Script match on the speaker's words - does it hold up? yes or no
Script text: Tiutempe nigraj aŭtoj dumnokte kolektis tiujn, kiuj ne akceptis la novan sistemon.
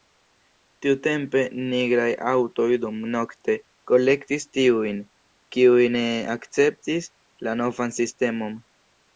yes